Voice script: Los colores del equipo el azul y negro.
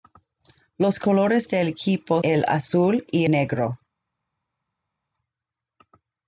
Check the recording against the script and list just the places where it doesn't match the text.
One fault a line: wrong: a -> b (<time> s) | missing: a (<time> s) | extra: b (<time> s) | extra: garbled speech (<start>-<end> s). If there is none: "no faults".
no faults